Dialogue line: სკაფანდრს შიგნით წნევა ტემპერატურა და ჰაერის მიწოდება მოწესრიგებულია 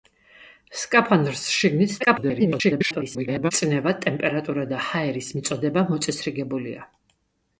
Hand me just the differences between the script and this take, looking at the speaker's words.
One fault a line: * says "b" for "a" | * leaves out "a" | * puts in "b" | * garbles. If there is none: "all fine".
* garbles